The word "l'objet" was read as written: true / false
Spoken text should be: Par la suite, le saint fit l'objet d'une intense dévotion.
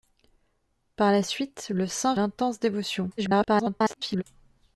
false